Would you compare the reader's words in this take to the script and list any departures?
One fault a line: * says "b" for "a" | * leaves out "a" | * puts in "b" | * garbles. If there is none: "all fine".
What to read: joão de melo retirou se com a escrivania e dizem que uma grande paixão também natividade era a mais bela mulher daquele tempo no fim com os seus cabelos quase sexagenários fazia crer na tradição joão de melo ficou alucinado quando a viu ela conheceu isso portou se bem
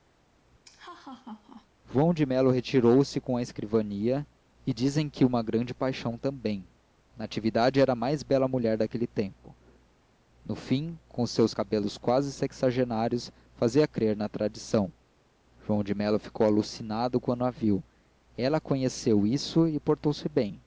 * puts in "e"